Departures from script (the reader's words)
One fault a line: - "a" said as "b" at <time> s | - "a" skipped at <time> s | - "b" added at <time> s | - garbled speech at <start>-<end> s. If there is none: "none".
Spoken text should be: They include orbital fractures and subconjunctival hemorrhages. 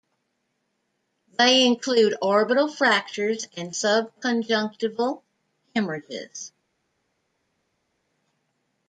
none